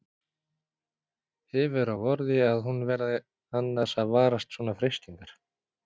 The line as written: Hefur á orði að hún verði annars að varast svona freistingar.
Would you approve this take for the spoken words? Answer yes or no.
yes